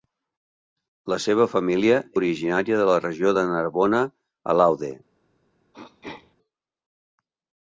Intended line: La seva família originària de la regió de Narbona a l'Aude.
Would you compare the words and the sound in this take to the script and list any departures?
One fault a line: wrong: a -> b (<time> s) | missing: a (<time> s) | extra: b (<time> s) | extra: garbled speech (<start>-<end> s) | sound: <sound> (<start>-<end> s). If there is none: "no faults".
sound: throat clearing (5.7-6.4 s)